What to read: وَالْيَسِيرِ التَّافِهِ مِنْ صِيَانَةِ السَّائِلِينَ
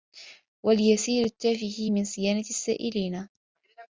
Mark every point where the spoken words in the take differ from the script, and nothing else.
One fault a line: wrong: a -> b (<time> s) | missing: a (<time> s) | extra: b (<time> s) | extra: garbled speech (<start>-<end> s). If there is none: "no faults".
no faults